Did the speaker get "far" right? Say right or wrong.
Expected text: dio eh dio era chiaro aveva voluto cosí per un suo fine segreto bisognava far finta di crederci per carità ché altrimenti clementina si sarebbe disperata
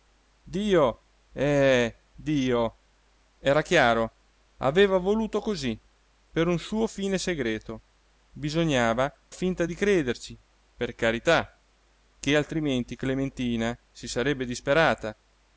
wrong